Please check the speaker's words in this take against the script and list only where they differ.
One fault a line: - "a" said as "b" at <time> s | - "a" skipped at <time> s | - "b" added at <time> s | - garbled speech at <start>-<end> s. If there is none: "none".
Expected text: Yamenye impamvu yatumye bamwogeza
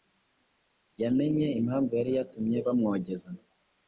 - "yari" added at 2.0 s